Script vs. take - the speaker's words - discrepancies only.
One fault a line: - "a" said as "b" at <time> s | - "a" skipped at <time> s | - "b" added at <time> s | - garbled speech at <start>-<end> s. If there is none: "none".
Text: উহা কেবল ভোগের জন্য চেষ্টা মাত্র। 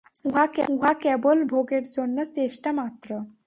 none